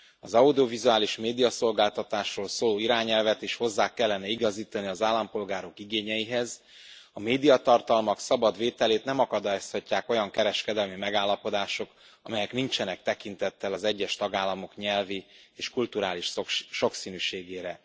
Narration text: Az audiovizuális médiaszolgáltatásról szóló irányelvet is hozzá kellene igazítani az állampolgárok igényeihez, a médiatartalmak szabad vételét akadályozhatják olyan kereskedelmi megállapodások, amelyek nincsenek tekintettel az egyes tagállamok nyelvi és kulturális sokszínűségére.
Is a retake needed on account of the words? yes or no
yes